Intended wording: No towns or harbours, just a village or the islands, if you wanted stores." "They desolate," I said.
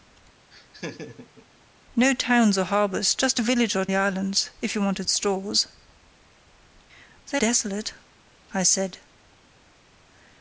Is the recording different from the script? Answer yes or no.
no